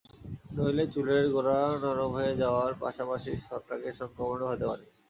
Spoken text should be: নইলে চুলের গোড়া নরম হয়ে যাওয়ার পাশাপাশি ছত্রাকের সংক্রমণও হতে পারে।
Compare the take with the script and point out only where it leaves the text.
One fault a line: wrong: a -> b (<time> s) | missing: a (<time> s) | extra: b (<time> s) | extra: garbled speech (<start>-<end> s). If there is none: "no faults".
no faults